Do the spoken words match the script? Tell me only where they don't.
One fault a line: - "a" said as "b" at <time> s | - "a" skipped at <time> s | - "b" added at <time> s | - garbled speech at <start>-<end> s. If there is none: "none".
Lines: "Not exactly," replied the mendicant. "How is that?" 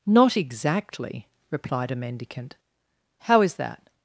- "the" said as "a" at 1.9 s